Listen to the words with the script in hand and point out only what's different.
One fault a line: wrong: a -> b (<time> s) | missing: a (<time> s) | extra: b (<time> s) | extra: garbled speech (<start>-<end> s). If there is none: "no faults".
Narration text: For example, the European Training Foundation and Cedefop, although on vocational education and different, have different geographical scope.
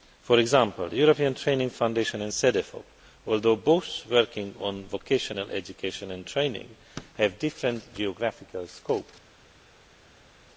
extra: both working (3.5 s)
wrong: different -> training (6.3 s)